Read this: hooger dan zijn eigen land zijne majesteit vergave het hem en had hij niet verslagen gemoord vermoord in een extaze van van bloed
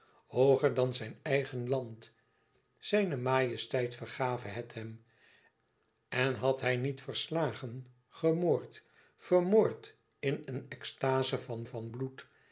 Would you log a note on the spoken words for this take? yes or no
no